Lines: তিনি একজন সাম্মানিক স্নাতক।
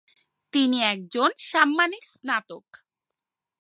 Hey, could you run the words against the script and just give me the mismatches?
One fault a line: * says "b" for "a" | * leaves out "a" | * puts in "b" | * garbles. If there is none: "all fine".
all fine